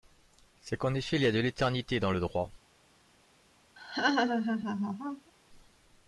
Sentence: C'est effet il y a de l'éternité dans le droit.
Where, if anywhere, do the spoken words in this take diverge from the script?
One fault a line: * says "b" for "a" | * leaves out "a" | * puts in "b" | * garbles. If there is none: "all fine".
* puts in "qu'en"